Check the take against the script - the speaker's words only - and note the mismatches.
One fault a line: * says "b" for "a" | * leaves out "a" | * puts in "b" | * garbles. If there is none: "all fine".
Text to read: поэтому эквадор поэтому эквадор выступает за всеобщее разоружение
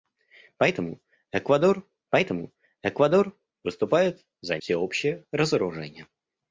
all fine